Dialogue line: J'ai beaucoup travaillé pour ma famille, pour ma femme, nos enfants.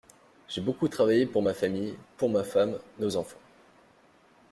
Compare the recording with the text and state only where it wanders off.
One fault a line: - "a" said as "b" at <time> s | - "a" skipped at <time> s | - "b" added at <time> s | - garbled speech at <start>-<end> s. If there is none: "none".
none